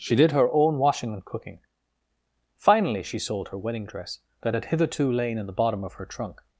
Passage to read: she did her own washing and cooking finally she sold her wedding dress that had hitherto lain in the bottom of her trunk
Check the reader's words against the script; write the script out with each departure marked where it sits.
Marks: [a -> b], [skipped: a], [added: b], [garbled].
she did her own washing and cooking finally she sold her wedding dress that had hitherto lain in the bottom of her trunk